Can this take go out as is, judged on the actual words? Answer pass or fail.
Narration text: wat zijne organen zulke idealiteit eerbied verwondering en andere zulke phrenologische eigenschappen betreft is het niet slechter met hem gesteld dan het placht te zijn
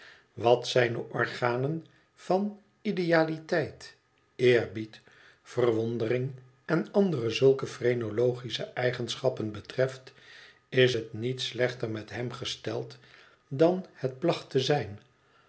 fail